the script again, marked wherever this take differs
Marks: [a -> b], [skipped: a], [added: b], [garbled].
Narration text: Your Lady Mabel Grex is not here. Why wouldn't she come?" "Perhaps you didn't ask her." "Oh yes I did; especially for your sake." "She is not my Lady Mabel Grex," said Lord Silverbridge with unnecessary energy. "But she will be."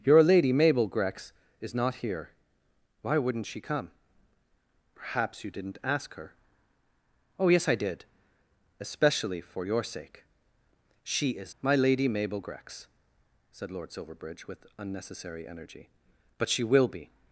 Your Lady Mabel Grex is not here. Why wouldn't she come?" "Perhaps you didn't ask her." "Oh yes I did; especially for your sake." "She is [skipped: not] my Lady Mabel Grex," said Lord Silverbridge with unnecessary energy. "But she will be."